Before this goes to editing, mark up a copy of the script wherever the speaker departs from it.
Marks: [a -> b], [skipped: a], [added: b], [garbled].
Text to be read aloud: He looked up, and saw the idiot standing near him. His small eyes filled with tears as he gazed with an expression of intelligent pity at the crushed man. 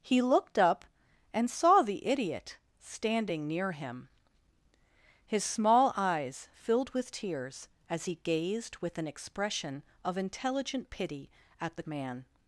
He looked up, and saw the idiot standing near him. His small eyes filled with tears as he gazed with an expression of intelligent pity at the [skipped: crushed] man.